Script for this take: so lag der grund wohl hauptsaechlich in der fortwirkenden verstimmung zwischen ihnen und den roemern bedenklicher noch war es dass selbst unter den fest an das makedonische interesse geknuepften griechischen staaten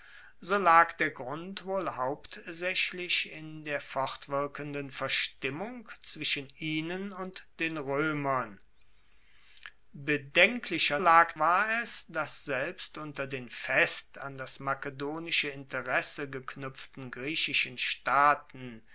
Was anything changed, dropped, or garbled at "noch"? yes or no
yes